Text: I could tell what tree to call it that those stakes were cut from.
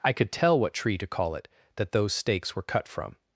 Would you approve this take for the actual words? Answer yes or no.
yes